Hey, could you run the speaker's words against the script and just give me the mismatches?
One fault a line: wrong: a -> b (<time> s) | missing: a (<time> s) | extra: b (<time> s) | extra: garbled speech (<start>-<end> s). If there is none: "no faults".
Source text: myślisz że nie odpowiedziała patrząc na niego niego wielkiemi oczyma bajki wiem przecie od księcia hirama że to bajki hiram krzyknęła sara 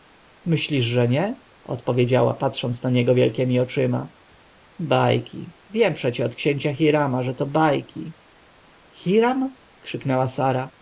missing: niego (3.1 s)